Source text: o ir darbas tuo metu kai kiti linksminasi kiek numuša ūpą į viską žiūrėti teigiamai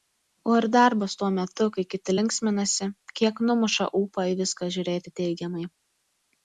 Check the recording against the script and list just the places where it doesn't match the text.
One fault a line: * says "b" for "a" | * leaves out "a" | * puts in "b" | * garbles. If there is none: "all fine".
all fine